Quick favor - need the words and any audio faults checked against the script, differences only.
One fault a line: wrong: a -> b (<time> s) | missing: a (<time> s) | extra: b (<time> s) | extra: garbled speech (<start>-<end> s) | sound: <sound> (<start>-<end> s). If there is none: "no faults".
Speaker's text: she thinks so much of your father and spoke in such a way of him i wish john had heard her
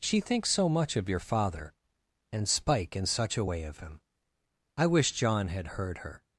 wrong: spoke -> spike (2.5 s)